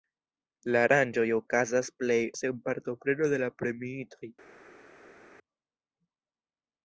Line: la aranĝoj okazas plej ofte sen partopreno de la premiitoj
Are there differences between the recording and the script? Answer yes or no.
yes